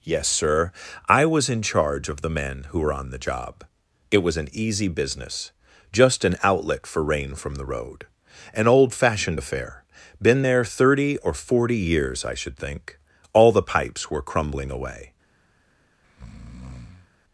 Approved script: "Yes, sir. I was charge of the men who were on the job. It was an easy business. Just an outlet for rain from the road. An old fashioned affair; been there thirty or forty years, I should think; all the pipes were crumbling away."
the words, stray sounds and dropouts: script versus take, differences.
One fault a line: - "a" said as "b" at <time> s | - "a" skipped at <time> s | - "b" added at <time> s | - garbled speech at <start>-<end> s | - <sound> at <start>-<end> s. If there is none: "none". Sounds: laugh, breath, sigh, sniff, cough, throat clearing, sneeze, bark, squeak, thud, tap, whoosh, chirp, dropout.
- "in" added at 1.5 s
- breath at 16.0-17.1 s